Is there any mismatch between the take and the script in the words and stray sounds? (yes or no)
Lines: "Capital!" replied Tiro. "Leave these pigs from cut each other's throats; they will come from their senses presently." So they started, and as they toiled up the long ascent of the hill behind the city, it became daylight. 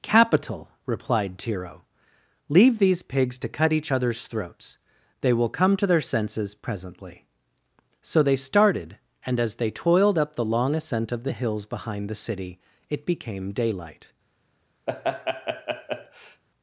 yes